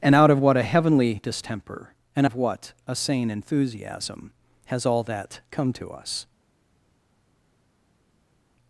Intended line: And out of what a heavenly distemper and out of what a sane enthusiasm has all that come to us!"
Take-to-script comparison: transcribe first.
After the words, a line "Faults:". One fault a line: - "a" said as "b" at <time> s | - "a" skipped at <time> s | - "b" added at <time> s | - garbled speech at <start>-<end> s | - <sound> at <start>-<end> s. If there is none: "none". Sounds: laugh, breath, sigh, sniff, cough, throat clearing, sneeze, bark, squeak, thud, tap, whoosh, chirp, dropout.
And out of what a heavenly distemper and of what a sane enthusiasm has all that come to us!"
Faults:
- "out" skipped at 2.2 s